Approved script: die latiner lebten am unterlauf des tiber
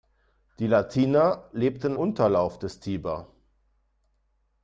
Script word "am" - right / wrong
wrong